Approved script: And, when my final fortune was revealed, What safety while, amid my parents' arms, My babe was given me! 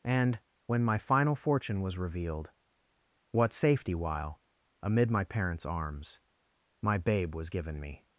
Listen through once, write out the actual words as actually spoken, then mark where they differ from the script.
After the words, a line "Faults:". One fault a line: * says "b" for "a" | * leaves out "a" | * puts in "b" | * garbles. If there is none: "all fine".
And, when my final fortune was revealed, What safety while, amid my parents' arms, My babe was given me!
Faults:
all fine